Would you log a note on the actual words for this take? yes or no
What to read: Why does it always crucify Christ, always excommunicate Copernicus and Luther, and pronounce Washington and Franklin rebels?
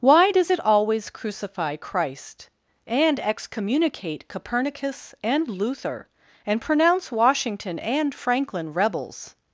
yes